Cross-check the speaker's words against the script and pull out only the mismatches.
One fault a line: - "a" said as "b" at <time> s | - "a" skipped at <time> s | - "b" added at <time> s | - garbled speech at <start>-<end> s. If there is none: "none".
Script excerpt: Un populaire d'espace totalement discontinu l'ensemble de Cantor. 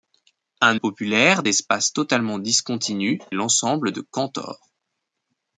none